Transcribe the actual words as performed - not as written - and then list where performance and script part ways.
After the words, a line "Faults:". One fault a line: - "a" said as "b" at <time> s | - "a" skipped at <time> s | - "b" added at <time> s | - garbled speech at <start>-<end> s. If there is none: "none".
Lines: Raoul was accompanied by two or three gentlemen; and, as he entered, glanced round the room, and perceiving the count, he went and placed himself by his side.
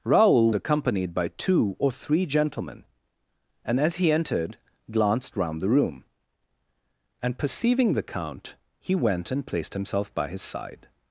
Raoul accompanied by two or three gentlemen; and, as he entered, glanced round the room, and perceiving the count, he went and placed himself by his side.
Faults:
- "was" skipped at 0.5 s